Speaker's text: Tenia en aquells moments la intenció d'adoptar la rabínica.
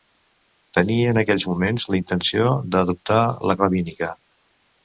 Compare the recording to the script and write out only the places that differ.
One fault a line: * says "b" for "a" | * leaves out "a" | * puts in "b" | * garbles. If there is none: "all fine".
all fine